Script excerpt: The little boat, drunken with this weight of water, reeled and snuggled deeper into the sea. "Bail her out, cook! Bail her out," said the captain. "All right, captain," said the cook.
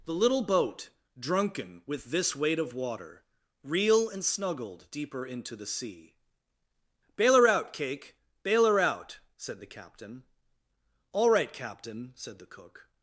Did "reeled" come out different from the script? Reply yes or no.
yes